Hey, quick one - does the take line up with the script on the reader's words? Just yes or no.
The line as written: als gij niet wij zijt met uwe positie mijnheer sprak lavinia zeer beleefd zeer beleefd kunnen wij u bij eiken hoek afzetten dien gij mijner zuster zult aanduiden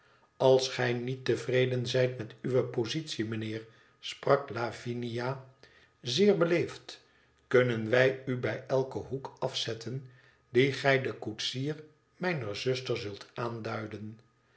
no